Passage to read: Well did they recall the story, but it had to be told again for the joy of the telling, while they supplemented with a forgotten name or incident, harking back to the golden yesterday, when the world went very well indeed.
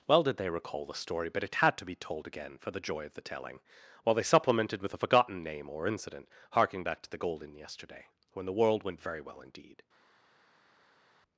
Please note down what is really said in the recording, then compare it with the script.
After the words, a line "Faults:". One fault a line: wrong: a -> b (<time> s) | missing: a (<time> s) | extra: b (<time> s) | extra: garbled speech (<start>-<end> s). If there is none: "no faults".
Well did they recall the story, but it had to be told again for the joy of the telling, while they supplemented with a forgotten name or incident, harking back to the golden yesterday, when the world went very well indeed.
Faults:
no faults